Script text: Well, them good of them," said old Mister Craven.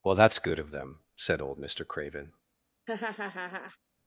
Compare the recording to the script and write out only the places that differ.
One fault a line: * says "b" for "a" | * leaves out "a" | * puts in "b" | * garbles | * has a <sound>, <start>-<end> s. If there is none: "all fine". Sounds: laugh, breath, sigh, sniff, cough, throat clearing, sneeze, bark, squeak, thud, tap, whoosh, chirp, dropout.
* says "that's" for "them"
* has a laugh, 2.9-3.8 s